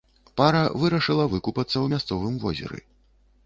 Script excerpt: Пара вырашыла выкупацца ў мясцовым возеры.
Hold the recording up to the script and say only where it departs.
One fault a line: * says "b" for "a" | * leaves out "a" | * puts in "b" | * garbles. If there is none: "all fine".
all fine